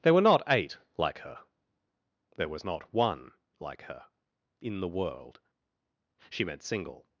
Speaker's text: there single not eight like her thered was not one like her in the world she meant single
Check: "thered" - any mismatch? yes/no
yes